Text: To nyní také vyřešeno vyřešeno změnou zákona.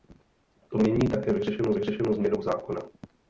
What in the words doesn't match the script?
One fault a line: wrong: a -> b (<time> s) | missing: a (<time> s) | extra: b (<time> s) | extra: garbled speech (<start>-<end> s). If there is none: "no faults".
no faults